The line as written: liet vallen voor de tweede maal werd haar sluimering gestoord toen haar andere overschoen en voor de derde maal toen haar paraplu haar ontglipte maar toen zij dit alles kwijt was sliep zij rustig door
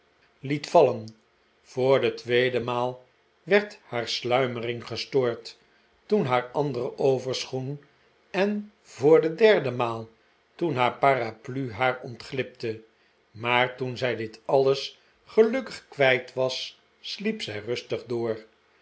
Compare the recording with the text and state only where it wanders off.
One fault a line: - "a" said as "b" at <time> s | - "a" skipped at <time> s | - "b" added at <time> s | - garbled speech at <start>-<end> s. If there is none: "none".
- "gelukkig" added at 15.3 s